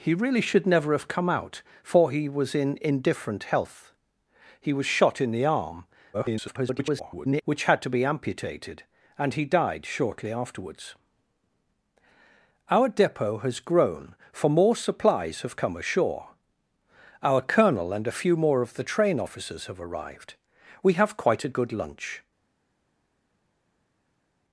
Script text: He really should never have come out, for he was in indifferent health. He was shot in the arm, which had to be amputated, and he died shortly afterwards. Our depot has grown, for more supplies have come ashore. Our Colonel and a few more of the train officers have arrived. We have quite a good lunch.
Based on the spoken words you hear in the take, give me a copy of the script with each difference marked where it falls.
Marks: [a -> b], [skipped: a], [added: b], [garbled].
He really should never have come out, for he was in indifferent health. He was shot in the arm, [garbled] which had to be amputated, and he died shortly afterwards. Our depot has grown, for more supplies have come ashore. Our Colonel and a few more of the train officers have arrived. We have quite a good lunch.